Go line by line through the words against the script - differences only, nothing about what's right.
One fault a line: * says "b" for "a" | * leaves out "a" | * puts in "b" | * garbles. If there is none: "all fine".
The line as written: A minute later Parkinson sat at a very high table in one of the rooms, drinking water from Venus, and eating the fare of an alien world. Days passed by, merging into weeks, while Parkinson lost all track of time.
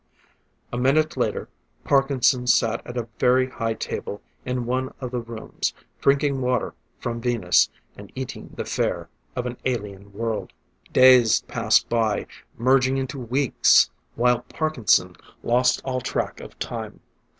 all fine